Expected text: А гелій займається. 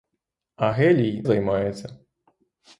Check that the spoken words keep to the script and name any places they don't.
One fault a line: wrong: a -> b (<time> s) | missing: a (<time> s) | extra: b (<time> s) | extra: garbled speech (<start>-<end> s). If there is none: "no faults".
no faults